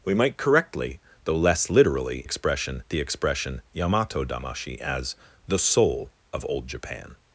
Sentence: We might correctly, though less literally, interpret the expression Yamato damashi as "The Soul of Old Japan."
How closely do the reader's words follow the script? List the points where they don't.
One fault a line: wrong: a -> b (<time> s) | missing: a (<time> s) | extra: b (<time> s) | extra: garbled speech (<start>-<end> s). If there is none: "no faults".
wrong: interpret -> expression (2.2 s)